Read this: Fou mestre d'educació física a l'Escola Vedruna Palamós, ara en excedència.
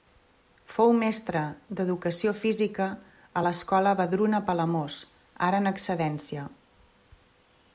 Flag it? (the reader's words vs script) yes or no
no